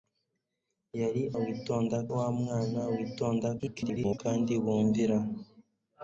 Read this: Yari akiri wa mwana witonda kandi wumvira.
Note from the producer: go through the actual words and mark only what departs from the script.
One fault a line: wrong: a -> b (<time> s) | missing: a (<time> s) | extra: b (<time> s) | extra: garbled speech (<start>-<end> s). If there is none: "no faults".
wrong: akiri -> witonda (1.4 s)
extra: garbled speech (3.6-4.2 s)